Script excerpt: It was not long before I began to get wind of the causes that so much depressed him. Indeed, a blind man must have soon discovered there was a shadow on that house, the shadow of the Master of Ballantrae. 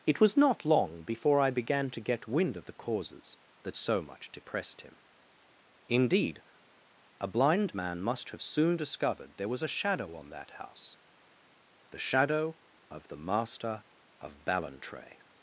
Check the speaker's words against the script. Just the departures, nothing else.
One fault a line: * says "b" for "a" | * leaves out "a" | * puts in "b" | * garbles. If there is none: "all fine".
all fine